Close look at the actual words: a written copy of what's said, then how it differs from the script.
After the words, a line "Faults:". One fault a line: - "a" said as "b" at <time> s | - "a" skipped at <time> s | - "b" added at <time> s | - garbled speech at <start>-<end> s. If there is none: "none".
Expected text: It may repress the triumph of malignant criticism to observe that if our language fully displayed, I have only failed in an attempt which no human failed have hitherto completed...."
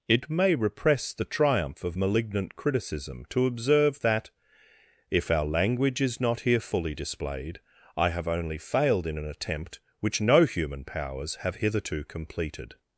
It may repress the triumph of malignant criticism to observe that if our language is not here fully displayed, I have only failed in an attempt which no human powers have hitherto completed...."
Faults:
- "is not here" added at 6.0 s
- "failed" said as "powers" at 10.8 s